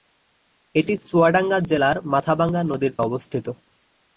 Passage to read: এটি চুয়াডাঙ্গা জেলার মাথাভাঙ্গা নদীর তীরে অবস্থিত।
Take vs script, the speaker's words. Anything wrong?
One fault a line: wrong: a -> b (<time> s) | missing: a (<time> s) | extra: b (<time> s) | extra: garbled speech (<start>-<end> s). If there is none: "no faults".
missing: তীরে (2.9 s)